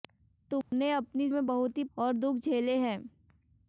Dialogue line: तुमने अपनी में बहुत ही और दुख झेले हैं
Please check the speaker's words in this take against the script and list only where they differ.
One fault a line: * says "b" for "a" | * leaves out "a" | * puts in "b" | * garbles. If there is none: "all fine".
all fine